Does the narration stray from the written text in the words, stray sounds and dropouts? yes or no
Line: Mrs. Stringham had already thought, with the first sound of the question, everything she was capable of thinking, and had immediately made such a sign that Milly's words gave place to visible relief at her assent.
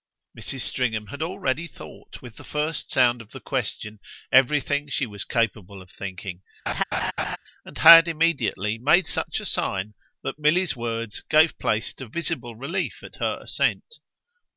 yes